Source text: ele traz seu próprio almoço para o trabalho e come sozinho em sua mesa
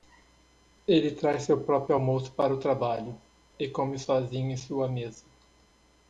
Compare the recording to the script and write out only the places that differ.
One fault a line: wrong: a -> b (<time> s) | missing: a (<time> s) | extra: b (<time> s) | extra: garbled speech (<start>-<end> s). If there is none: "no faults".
no faults